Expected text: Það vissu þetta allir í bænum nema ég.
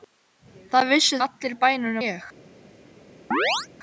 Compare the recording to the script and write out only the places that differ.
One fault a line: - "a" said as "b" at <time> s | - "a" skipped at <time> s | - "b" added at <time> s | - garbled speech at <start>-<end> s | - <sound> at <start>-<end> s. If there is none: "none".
- "þetta" skipped at 1.2 s
- "nema" skipped at 2.0 s
- chirp at 3.3-3.7 s